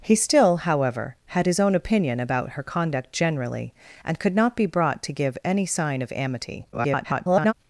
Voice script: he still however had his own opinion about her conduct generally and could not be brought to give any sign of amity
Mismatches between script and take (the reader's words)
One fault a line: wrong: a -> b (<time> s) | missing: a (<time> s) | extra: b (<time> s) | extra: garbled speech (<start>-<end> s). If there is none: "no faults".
extra: garbled speech (6.7-7.5 s)